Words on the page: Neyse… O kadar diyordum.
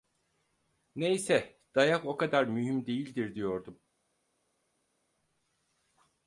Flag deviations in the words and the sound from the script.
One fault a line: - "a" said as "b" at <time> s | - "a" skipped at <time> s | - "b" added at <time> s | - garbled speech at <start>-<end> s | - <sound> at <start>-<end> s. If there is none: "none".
- "Dayak" added at 1.8 s
- "mühim değildir" added at 2.4 s